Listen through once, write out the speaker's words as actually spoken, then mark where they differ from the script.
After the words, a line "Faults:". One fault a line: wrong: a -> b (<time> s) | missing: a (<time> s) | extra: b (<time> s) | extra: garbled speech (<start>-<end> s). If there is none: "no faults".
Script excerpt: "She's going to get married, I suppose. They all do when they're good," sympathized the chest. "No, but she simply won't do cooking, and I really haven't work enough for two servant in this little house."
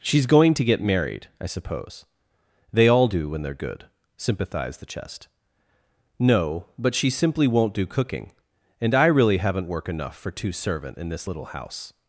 "She's going to get married, I suppose. They all do when they're good," sympathized the chest. "No, but she simply won't do cooking, and I really haven't work enough for two servant in this little house."
Faults:
no faults